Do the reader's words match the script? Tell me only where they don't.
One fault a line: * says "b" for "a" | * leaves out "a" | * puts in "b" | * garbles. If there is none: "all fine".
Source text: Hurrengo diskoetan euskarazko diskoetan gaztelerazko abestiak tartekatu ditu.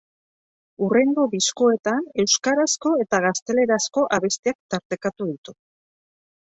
* says "eta" for "diskoetan"